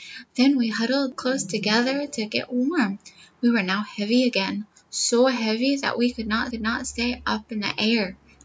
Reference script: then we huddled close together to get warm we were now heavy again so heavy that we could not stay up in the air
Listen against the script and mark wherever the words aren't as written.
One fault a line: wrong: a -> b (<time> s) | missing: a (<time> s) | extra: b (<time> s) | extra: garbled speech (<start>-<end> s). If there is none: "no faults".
extra: could not (6.5 s)